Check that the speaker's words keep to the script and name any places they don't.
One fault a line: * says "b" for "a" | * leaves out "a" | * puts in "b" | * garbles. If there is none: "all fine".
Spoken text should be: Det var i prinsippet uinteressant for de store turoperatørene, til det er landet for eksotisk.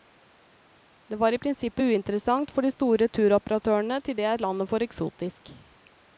all fine